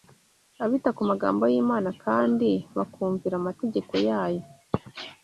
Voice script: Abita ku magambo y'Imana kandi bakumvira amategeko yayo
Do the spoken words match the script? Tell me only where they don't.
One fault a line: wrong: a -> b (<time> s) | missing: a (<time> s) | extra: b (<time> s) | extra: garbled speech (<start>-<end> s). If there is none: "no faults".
no faults